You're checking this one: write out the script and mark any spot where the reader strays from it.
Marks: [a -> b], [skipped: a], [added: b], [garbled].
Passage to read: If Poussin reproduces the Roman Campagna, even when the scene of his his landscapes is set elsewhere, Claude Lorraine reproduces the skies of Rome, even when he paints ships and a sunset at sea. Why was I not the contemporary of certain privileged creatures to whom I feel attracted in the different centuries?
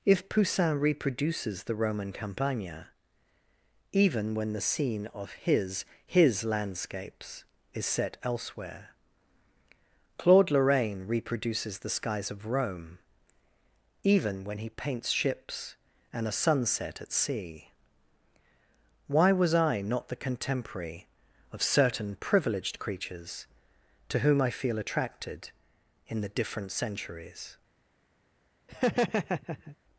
If Poussin reproduces the Roman Campagna, even when the scene of his his landscapes is set elsewhere, Claude Lorraine reproduces the skies of Rome, even when he paints ships and a sunset at sea. Why was I not the contemporary of certain privileged creatures to whom I feel attracted in the different centuries?